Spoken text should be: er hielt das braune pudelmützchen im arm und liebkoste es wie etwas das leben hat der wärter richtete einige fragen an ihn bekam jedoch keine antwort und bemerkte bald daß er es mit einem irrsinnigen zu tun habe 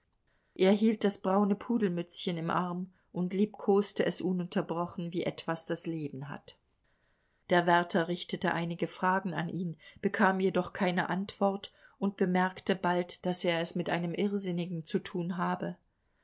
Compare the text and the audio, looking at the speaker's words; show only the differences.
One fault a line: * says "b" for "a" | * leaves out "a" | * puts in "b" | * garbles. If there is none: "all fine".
* puts in "ununterbrochen"